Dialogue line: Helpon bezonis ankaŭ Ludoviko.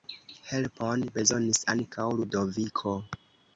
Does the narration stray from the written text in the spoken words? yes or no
no